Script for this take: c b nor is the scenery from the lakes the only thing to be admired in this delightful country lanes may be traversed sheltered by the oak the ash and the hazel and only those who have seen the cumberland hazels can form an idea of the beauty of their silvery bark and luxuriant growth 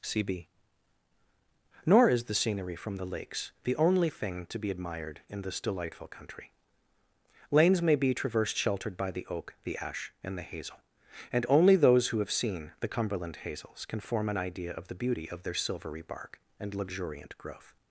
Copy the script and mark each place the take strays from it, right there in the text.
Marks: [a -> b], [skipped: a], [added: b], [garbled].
c b nor is the scenery from the lakes the only thing to be admired in this delightful country lanes may be traversed sheltered by the oak the ash and the hazel and only those who have seen the cumberland hazels can form an idea of the beauty of their silvery bark and luxuriant growth